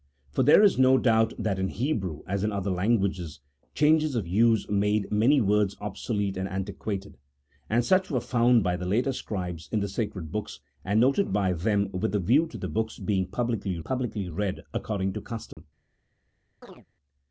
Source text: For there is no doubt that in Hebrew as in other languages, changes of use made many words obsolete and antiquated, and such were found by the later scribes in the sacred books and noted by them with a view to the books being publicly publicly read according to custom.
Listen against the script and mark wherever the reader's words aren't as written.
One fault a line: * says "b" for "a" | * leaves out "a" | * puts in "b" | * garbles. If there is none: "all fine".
all fine